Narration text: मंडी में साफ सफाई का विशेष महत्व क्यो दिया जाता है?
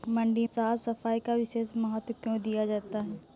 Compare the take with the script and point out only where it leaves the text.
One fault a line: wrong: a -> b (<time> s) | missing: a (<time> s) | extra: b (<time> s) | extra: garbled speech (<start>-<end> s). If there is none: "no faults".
missing: में (0.5 s)